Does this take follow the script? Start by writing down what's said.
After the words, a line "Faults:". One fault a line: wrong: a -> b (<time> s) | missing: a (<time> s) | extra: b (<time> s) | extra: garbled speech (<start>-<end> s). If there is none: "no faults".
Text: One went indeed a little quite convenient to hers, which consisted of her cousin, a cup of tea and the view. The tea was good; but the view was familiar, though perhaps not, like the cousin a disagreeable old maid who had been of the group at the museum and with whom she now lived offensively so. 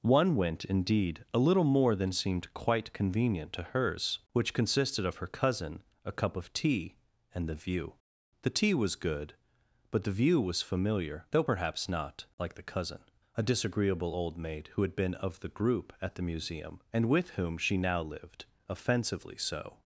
One went indeed a little more than seemed quite convenient to hers, which consisted of her cousin, a cup of tea and the view. The tea was good; but the view was familiar, though perhaps not, like the cousin a disagreeable old maid who had been of the group at the museum and with whom she now lived offensively so.
Faults:
extra: more than seemed (1.6 s)